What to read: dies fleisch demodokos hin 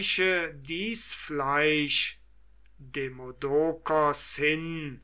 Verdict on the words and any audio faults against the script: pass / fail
pass